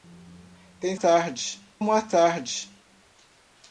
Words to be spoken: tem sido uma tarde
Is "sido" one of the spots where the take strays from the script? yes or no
yes